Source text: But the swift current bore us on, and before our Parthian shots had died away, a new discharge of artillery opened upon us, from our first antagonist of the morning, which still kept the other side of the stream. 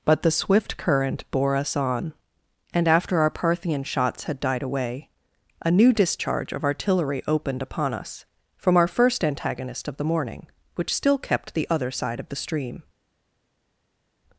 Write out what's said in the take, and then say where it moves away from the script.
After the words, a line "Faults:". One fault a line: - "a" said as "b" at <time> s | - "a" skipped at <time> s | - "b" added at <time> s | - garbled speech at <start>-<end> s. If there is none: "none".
But the swift current bore us on, and after our Parthian shots had died away, a new discharge of artillery opened upon us, from our first antagonist of the morning, which still kept the other side of the stream.
Faults:
- "before" said as "after" at 2.9 s